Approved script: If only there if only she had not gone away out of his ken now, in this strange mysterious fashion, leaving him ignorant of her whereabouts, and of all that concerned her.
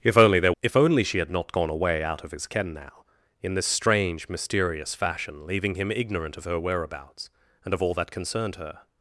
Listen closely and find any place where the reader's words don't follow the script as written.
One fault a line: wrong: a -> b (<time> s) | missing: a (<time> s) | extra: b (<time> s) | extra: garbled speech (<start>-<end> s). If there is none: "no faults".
no faults